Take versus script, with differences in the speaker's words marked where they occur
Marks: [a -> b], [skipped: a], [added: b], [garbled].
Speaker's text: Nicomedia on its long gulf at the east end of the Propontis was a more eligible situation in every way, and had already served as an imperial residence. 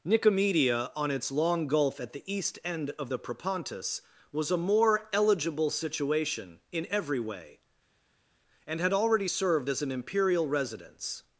Nicomedia on its long gulf at the east end of the Propontis was a more eligible situation in every way, and had already served as an imperial residence.